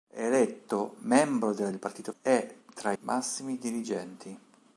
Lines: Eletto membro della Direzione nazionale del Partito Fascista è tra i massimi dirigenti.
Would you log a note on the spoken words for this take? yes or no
yes